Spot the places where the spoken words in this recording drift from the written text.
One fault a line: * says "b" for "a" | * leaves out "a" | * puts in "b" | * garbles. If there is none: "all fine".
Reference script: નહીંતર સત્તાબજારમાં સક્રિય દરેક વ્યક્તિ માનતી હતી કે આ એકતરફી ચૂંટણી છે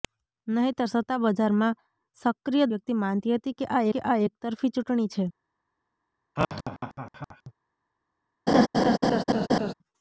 * leaves out "દરેક"
* puts in "કે આ"